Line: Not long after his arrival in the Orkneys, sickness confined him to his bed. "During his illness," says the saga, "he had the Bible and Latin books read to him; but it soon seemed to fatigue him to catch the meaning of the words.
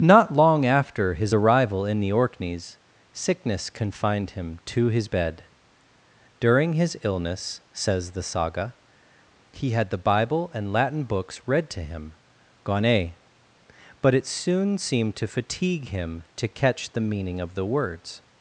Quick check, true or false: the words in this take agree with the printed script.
false